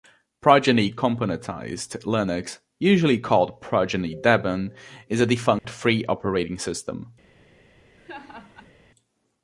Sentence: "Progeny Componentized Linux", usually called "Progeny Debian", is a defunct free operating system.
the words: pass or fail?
pass